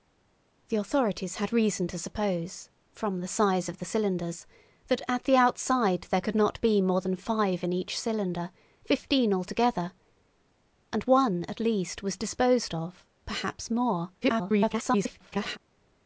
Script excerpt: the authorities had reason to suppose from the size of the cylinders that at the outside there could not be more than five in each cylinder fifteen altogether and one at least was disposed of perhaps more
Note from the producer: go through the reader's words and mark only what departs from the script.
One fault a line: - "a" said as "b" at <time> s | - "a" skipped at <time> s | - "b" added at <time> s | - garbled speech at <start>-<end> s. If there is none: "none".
- garbled speech at 14.2-15.6 s